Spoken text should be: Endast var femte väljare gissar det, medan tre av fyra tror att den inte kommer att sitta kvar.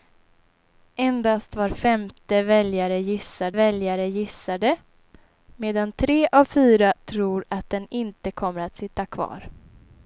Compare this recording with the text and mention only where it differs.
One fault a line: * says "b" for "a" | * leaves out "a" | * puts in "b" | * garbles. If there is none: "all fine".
* puts in "väljare gissar"